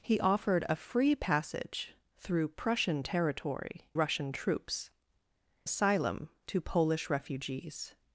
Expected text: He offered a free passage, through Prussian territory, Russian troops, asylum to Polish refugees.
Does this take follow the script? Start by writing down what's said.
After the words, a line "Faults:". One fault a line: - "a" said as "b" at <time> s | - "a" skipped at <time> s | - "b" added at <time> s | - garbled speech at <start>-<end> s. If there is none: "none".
He offered a free passage, through Prussian territory, Russian troops, asylum to Polish refugees.
Faults:
none